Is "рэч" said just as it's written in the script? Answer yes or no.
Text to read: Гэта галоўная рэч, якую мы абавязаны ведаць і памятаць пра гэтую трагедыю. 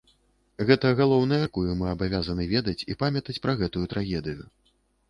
no